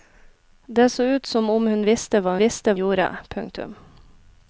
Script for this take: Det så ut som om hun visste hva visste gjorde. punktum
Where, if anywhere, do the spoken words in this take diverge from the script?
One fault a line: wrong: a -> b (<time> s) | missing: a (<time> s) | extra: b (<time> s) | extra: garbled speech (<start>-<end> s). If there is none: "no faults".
no faults